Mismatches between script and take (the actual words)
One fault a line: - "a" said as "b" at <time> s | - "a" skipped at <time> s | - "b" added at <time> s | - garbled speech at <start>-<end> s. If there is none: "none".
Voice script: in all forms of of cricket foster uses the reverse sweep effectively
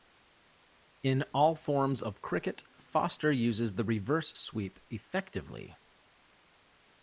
- "of" skipped at 2.2 s